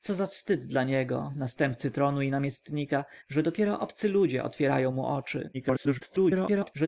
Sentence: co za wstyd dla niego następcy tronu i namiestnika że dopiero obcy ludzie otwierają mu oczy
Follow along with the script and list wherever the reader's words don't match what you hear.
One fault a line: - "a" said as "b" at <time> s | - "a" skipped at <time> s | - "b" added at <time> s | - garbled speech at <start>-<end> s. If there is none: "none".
- garbled speech at 5.5-6.9 s